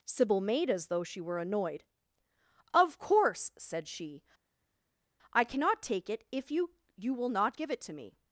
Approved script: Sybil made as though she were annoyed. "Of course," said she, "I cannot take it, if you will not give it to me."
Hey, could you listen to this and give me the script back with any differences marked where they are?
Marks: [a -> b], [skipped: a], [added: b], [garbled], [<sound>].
Sybil made as though she were annoyed. "Of course," said she, "I cannot take it, if you [added: you] will not give it to me."